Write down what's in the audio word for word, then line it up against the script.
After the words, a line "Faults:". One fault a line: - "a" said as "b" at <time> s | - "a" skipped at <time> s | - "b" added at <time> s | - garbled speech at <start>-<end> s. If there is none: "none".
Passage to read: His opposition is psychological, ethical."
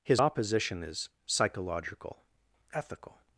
His opposition is psychological, ethical."
Faults:
none